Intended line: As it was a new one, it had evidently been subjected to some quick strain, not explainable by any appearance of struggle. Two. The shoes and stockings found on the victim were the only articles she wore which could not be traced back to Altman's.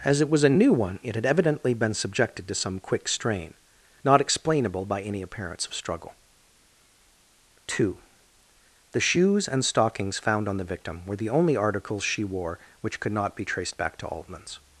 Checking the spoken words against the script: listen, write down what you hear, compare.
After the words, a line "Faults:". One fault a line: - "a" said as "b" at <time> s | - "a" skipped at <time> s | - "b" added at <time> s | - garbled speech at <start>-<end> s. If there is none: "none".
As it was a new one, it had evidently been subjected to some quick strain, not explainable by any appearance of struggle. Two. The shoes and stockings found on the victim were the only articles she wore which could not be traced back to Altman's.
Faults:
none